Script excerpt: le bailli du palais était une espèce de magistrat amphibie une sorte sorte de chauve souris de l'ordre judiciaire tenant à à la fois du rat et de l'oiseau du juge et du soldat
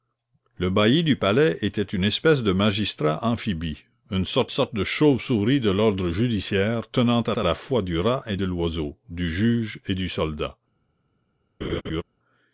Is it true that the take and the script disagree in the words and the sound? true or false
true